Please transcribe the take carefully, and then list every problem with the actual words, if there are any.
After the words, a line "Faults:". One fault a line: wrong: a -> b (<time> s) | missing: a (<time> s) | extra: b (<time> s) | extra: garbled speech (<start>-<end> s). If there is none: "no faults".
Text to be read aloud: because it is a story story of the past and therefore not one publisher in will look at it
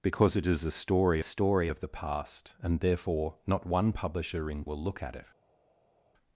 because it is a story story of the past and therefore not one publisher in will look at it
Faults:
no faults